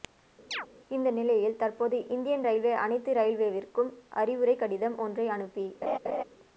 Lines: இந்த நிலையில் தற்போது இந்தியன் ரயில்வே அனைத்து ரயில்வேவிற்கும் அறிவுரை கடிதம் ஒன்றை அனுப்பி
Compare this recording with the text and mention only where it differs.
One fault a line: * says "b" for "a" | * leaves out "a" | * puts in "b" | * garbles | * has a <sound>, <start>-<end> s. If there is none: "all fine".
* has a chirp, 0.5-0.7 s
* has a laugh, 5.8-6.2 s